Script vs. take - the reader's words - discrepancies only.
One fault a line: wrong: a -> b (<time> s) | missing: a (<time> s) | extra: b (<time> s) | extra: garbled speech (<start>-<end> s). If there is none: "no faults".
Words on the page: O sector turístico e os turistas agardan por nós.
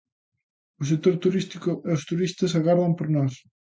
no faults